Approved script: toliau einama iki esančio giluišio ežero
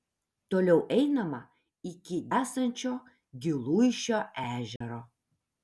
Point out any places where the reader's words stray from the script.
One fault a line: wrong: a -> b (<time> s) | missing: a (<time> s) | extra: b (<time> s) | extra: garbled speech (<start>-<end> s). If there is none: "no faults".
no faults